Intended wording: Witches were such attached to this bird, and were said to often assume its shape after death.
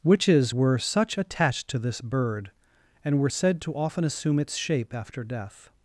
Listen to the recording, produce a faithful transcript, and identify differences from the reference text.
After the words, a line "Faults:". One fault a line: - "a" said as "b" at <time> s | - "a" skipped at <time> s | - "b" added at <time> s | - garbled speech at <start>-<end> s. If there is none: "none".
Witches were such attached to this bird, and were said to often assume its shape after death.
Faults:
none